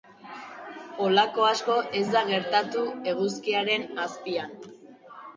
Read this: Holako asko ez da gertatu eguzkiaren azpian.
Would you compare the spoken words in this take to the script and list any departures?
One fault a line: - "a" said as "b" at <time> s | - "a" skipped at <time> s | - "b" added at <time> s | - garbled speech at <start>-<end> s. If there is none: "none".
none